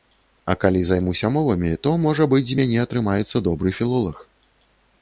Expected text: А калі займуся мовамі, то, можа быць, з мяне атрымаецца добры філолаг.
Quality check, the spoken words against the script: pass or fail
pass